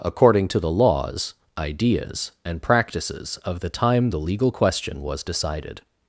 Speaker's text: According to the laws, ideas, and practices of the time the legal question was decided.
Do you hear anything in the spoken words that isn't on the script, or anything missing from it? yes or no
no